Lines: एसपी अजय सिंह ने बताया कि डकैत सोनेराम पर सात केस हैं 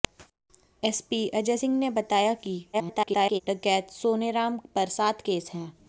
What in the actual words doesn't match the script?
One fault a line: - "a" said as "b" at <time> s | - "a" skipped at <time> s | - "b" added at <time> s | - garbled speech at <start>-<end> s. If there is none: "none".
- garbled speech at 2.7-3.4 s